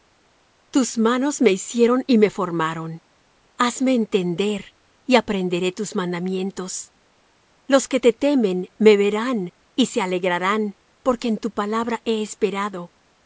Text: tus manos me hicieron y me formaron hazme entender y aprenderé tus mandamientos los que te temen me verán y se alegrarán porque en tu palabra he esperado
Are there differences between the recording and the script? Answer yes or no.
no